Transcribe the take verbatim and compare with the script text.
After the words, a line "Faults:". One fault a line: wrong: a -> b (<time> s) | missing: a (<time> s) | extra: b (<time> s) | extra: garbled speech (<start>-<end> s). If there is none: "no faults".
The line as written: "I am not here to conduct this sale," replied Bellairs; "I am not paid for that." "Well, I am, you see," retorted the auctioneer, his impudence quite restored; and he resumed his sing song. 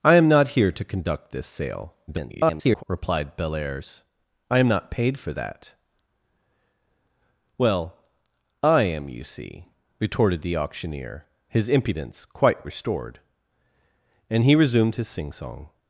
"I am not here to conduct this sale," [garbled] replied Bellairs; "I am not paid for that." "Well, I am, you see," retorted the auctioneer, his impudence quite restored; and he resumed his sing song.
Faults:
extra: garbled speech (2.1-2.8 s)